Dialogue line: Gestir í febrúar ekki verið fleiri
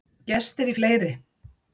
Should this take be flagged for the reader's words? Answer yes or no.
yes